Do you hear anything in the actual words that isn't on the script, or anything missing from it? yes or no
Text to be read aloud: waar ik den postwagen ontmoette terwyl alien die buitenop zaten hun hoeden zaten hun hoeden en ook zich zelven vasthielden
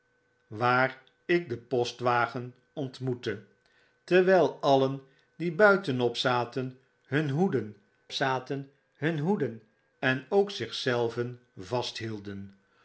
no